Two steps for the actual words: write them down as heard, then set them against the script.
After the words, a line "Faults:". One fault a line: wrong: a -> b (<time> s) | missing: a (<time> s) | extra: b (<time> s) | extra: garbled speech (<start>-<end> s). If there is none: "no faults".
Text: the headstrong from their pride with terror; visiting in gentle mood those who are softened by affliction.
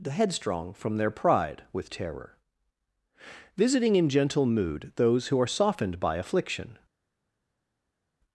the headstrong from their pride with terror; visiting in gentle mood those who are softened by affliction.
Faults:
no faults